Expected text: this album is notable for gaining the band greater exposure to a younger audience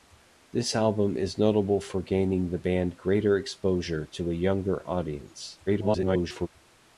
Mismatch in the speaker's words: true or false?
true